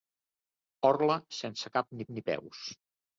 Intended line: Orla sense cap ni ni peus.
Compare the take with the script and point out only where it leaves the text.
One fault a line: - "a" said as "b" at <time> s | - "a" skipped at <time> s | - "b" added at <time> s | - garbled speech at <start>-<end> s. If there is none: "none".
none